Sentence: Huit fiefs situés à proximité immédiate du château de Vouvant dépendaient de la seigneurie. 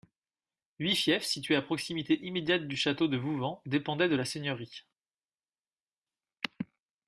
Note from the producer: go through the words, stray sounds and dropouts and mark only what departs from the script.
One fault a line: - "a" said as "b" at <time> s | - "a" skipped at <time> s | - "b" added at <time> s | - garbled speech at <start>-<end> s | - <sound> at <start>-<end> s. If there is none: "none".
none